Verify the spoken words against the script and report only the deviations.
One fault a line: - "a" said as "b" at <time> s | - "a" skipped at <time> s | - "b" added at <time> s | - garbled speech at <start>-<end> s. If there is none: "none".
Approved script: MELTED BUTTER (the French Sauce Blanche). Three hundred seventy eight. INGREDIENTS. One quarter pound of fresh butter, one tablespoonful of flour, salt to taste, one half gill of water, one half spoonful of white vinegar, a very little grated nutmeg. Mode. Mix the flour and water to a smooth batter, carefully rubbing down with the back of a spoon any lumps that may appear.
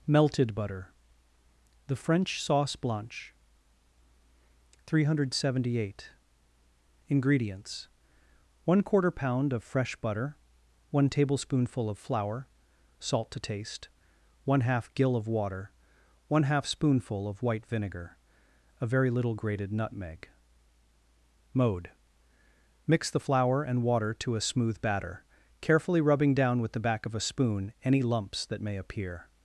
none